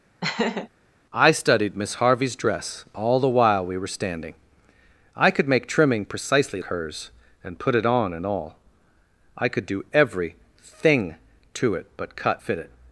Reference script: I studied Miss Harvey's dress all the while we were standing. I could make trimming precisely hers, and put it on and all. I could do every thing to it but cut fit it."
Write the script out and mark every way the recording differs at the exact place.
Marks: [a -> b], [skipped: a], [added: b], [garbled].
I studied Miss Harvey's dress all the while we were standing. I could make trimming precisely hers, and put it on and all. I could do every thing to it but cut fit it."